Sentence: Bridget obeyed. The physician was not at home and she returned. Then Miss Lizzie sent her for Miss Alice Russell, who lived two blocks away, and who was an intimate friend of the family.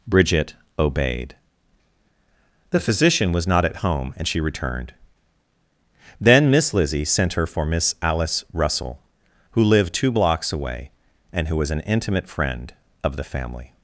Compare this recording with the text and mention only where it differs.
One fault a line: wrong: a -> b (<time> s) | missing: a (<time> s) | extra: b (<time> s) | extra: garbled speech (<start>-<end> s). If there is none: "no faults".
no faults